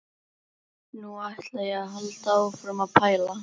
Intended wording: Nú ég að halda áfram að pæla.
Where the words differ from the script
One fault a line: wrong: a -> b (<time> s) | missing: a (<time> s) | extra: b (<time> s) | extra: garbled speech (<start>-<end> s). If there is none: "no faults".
extra: ætla (1.3 s)